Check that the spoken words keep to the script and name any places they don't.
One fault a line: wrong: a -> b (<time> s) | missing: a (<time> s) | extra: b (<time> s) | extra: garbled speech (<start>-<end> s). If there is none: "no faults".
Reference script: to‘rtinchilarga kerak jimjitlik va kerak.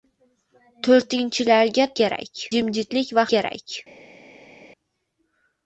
no faults